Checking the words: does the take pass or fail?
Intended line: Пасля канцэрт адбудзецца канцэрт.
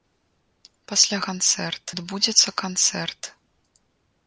pass